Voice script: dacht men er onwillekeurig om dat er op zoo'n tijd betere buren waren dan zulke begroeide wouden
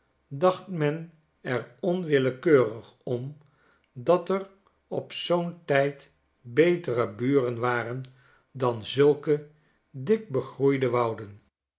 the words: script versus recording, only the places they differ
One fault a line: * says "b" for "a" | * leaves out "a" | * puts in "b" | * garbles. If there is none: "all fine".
* puts in "dik"